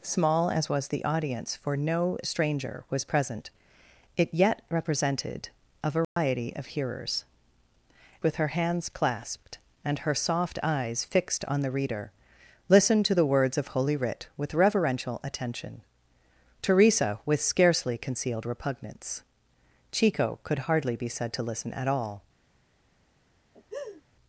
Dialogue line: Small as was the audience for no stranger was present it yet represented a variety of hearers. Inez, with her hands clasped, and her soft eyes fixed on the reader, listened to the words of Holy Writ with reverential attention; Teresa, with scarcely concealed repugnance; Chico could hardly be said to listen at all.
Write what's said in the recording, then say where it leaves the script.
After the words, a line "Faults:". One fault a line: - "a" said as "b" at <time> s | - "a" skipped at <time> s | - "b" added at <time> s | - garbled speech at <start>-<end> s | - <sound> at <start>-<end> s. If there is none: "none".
Small as was the audience for no stranger was present it yet represented a variety of hearers. With her hands clasped, and her soft eyes fixed on the reader, listened to the words of Holy Writ with reverential attention; Teresa, with scarcely concealed repugnance; Chico could hardly be said to listen at all.
Faults:
- dropout at 6.0-6.2 s
- "Inez" skipped at 7.2 s
- laugh at 23.5-24.0 s